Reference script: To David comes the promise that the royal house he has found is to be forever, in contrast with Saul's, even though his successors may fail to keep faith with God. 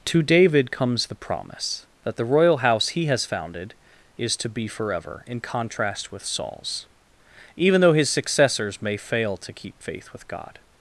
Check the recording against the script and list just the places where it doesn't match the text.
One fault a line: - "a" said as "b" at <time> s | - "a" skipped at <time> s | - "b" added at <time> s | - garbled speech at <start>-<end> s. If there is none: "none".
- "found" said as "founded" at 3.2 s